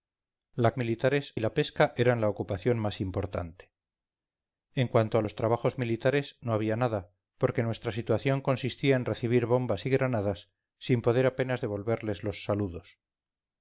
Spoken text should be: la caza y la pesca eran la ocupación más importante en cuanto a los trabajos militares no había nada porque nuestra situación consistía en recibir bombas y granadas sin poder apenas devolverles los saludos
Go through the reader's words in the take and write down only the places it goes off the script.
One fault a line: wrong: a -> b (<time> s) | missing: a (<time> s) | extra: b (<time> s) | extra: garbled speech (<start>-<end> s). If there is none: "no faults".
wrong: caza -> militares (0.8 s)